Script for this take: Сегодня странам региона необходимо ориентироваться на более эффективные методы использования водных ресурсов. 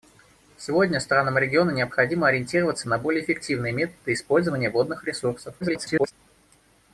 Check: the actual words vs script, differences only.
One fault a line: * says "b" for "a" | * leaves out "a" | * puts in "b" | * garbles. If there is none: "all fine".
* garbles